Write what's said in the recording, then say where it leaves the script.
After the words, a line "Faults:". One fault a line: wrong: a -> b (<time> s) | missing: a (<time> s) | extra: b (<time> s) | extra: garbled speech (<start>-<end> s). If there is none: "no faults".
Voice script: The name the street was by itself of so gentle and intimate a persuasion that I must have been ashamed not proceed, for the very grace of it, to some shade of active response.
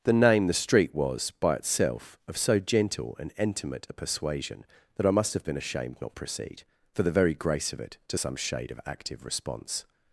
The name the street was by itself of so gentle and intimate a persuasion that I must have been ashamed not proceed, for the very grace of it, to some shade of active response.
Faults:
no faults